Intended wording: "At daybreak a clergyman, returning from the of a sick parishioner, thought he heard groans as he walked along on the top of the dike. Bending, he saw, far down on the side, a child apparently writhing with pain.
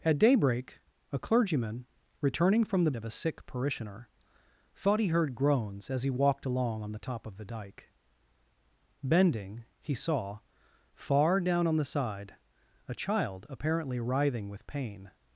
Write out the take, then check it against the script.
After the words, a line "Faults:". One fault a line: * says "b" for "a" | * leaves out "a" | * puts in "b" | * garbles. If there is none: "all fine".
"At daybreak a clergyman, returning from the of a sick parishioner, thought he heard groans as he walked along on the top of the dike. Bending, he saw, far down on the side, a child apparently writhing with pain.
Faults:
all fine